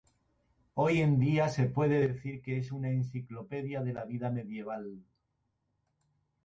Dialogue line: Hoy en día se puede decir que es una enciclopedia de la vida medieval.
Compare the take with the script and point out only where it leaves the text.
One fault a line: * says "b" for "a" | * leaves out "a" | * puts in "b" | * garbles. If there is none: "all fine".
all fine